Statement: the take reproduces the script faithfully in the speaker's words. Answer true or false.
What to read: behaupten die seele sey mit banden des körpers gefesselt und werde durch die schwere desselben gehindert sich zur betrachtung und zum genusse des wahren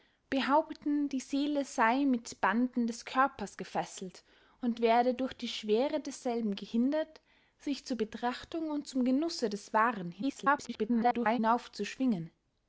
false